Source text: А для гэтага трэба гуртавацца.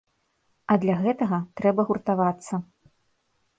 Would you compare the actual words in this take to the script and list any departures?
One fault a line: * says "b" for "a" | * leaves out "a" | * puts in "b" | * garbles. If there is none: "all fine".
all fine